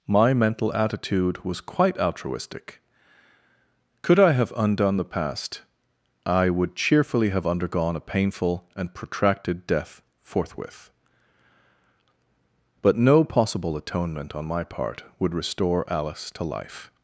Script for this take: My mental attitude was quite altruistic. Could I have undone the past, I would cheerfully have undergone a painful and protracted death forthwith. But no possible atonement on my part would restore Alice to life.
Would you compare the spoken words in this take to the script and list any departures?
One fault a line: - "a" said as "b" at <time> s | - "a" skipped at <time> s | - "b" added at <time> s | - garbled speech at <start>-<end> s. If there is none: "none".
none